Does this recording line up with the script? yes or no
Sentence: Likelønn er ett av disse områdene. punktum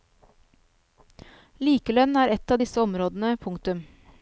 yes